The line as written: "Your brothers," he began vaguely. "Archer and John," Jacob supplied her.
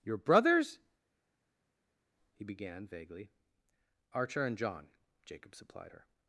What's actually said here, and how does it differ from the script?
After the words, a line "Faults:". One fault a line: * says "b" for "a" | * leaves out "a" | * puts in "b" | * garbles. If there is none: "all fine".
"Your brothers," he began vaguely. "Archer and John," Jacob supplied her.
Faults:
all fine